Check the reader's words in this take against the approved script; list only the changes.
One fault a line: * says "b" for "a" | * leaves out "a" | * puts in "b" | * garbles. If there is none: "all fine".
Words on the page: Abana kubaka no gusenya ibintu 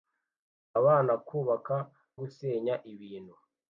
* leaves out "no"